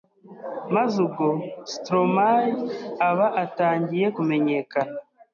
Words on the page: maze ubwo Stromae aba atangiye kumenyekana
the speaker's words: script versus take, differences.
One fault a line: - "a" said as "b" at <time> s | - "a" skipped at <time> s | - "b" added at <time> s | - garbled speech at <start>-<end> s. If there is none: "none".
none